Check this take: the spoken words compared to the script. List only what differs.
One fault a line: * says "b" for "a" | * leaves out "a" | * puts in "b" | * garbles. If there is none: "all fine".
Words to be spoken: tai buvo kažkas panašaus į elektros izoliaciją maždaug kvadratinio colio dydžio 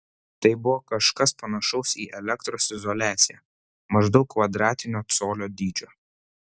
all fine